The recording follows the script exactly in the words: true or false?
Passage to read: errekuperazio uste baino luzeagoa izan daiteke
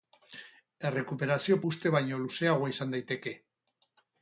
true